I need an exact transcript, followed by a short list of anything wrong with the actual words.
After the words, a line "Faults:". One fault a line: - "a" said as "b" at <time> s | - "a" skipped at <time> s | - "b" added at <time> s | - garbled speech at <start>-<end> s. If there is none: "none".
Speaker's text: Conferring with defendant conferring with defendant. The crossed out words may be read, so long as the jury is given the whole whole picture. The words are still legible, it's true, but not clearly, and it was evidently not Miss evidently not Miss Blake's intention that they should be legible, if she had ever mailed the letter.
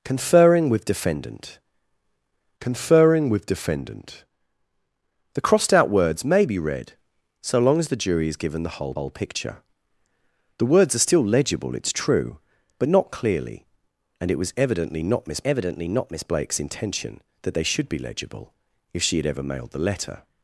Conferring with defendant conferring with defendant. The crossed out words may be read, so long as the jury is given the whole whole picture. The words are still legible, it's true, but not clearly, and it was evidently not Miss evidently not Miss Blake's intention that they should be legible, if she had ever mailed the letter.
Faults:
none